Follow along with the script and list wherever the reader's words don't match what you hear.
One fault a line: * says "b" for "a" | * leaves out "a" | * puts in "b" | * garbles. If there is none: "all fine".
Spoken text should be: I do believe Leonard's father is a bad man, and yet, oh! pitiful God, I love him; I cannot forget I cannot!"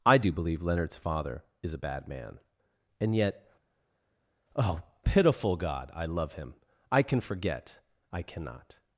* says "can" for "cannot"